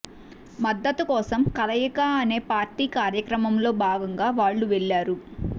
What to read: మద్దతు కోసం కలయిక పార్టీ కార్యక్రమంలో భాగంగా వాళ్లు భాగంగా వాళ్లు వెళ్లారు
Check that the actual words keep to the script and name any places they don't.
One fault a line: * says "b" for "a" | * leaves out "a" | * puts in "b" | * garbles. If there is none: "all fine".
* puts in "అనే"
* leaves out "భాగంగా వాళ్లు"